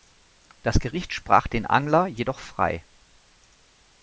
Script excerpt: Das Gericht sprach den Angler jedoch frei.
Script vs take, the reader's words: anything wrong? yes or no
no